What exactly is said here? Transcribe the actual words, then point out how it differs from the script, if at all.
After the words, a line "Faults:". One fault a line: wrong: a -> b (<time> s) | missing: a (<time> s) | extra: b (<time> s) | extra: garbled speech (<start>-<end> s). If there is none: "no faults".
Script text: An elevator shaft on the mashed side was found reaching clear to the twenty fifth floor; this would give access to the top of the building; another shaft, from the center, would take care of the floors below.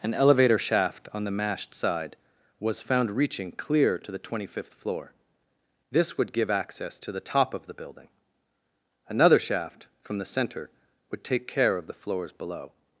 An elevator shaft on the mashed side was found reaching clear to the twenty fifth floor; this would give access to the top of the building; another shaft, from the center, would take care of the floors below.
Faults:
no faults